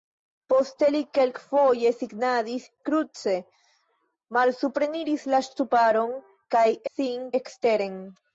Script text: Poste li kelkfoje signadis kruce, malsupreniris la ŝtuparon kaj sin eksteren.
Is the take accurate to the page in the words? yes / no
yes